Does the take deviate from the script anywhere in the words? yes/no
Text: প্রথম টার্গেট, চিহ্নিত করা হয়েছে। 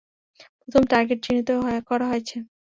no